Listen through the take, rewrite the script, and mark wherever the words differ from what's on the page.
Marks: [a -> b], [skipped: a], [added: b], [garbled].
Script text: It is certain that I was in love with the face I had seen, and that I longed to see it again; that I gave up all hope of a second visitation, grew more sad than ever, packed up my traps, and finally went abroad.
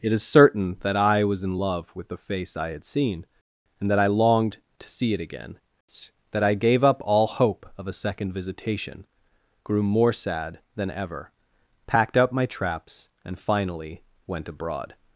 It is certain that I was in love with the face I had seen, and that I longed to see it again; that I gave up all hope of a second visitation, grew more sad than ever, packed up my traps, and finally went abroad.